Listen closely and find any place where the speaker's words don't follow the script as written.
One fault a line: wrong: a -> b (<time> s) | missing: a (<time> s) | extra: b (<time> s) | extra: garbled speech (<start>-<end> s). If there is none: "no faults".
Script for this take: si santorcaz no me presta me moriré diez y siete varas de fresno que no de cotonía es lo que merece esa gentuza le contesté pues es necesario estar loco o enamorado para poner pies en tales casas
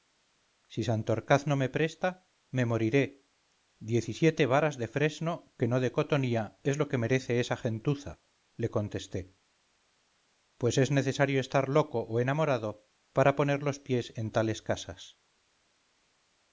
extra: los (13.6 s)